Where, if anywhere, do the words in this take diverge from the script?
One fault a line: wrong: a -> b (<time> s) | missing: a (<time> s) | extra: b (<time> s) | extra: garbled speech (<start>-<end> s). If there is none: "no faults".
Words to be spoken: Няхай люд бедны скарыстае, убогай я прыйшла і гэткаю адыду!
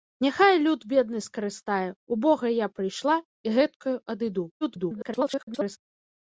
extra: garbled speech (4.6-5.8 s)